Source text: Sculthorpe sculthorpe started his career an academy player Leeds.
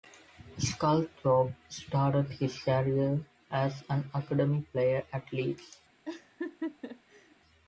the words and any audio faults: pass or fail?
fail